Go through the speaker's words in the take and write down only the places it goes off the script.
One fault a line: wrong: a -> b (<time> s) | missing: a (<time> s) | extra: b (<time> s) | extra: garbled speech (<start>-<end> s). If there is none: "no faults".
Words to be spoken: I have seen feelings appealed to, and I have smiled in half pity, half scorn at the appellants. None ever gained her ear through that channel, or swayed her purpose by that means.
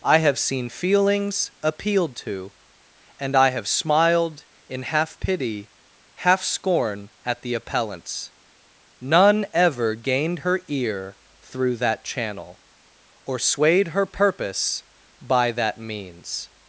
no faults